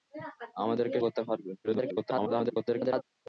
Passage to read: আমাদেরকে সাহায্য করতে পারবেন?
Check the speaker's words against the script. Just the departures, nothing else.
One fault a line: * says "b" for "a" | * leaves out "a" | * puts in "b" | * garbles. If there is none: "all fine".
* leaves out "সাহায্য"
* garbles